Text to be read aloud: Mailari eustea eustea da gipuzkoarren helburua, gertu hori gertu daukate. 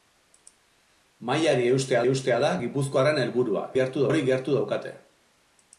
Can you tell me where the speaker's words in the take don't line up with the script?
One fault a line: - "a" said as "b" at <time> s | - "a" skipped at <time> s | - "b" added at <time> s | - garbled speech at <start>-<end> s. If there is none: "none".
none